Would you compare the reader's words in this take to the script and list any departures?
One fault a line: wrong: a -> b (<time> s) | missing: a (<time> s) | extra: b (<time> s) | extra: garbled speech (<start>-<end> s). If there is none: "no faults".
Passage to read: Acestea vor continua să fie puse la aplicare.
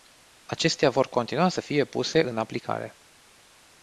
wrong: la -> în (2.2 s)